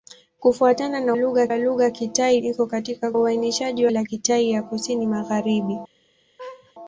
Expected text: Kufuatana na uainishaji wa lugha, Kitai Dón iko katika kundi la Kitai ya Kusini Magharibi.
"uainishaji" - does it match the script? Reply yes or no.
no